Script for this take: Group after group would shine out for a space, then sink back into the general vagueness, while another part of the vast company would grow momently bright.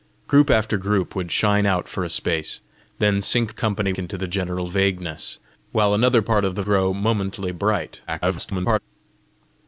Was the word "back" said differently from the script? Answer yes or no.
yes